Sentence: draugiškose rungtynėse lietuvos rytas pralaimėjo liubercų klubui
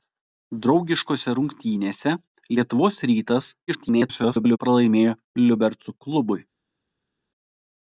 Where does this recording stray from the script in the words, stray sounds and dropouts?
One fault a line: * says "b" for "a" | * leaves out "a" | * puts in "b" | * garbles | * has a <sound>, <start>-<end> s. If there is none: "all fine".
* garbles